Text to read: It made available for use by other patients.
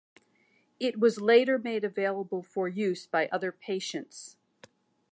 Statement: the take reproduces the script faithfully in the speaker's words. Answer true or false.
false